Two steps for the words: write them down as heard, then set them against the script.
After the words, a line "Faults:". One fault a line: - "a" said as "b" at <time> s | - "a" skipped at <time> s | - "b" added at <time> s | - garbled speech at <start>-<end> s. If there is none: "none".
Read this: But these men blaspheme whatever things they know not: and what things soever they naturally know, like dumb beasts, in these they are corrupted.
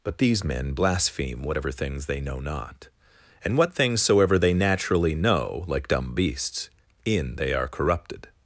But these men blaspheme whatever things they know not: and what things soever they naturally know, like dumb beasts, in they are corrupted.
Faults:
- "these" skipped at 7.3 s